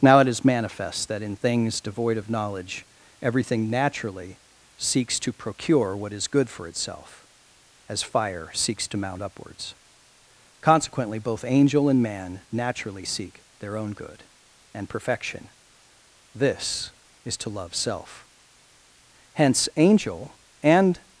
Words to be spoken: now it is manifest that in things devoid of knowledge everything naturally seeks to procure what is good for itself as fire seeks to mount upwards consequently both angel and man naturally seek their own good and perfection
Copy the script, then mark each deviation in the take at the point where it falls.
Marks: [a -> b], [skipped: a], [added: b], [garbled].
now it is manifest that in things devoid of knowledge everything naturally seeks to procure what is good for itself as fire seeks to mount upwards consequently both angel and man naturally seek their own good and perfection [added: this is to love self hence angel and]